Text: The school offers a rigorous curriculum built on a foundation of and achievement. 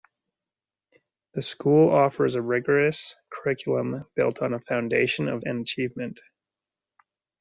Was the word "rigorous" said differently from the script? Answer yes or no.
no